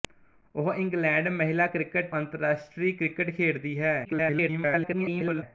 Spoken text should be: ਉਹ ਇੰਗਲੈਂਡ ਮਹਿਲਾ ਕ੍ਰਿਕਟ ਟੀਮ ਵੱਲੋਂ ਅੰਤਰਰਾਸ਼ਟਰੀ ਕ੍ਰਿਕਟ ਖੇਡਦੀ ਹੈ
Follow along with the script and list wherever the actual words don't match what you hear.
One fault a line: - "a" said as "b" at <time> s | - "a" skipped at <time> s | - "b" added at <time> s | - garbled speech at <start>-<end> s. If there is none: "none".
- "ਟੀਮ ਵੱਲੋਂ" skipped at 2.1 s
- garbled speech at 4.0-5.4 s